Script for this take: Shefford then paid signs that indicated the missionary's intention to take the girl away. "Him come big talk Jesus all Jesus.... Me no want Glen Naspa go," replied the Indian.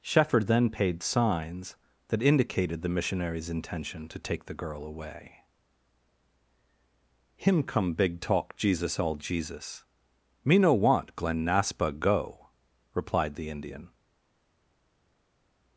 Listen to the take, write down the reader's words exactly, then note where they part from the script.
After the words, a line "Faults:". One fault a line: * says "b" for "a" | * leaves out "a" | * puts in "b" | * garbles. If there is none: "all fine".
Shefford then paid signs that indicated the missionary's intention to take the girl away. "Him come big talk Jesus all Jesus.... Me no want Glen Naspa go," replied the Indian.
Faults:
all fine